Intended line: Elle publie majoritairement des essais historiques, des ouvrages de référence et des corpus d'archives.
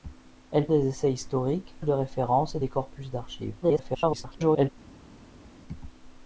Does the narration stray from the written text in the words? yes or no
yes